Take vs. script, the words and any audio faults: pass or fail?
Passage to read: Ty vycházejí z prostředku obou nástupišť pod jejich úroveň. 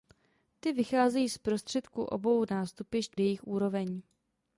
fail